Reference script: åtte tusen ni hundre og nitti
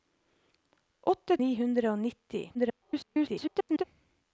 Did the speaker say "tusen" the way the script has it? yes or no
no